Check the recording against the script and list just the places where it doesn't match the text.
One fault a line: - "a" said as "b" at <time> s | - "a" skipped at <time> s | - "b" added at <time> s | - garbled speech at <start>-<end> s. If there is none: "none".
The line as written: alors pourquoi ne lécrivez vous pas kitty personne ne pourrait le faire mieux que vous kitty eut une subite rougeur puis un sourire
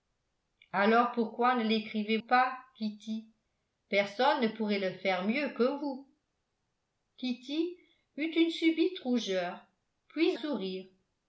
- "vous" skipped at 2.2 s
- "un" skipped at 10.4 s